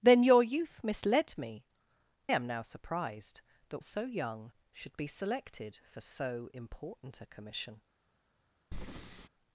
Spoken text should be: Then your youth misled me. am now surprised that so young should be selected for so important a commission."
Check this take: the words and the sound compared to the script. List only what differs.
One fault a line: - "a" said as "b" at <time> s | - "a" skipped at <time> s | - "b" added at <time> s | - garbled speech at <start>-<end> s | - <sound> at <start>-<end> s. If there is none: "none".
- breath at 8.7-9.3 s